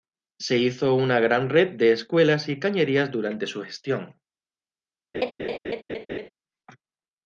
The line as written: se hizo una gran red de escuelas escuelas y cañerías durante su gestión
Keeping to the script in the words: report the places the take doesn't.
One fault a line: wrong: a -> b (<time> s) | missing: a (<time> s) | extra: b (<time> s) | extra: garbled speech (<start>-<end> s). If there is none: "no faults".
missing: escuelas (2.5 s)